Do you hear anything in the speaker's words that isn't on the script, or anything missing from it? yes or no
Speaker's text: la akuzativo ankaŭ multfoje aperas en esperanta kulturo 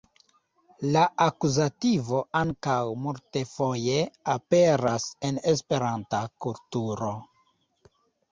no